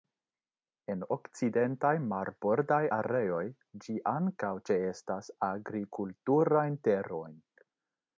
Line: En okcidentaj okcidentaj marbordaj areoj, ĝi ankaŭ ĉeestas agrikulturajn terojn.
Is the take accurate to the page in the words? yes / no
no